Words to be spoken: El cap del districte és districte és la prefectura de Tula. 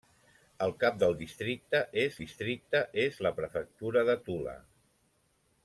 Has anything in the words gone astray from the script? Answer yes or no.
no